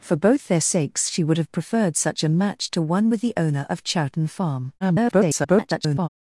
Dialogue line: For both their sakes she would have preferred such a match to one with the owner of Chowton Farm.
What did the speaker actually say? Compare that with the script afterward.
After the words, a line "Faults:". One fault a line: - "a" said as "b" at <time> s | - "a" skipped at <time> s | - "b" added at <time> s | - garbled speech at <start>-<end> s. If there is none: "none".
For both their sakes she would have preferred such a match to one with the owner of Chowton Farm. [garbled]
Faults:
- garbled speech at 4.8-6.1 s